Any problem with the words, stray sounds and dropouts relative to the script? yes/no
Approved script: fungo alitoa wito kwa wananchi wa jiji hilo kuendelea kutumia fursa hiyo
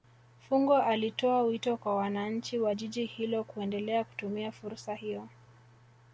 no